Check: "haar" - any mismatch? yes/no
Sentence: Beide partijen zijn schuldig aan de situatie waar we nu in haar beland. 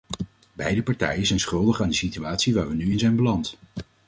yes